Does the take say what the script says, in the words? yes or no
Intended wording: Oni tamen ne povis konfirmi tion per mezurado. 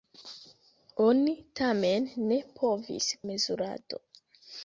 no